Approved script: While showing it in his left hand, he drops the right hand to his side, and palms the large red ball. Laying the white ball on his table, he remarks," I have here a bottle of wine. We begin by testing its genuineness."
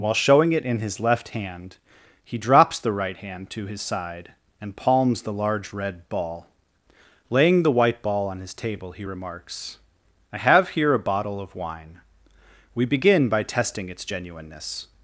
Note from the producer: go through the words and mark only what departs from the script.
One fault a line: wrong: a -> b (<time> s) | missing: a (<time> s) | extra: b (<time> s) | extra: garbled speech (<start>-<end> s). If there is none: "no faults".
no faults